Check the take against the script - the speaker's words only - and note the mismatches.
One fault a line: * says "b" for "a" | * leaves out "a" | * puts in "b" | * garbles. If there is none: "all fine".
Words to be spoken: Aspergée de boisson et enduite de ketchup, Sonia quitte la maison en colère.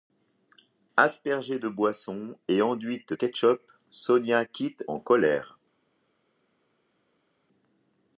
* leaves out "de"
* leaves out "la maison"